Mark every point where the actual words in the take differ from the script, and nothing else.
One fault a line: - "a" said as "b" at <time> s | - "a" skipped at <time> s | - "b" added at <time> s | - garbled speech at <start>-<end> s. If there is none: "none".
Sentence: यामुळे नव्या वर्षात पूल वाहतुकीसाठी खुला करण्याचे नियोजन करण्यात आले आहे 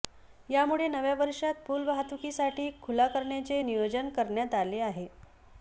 none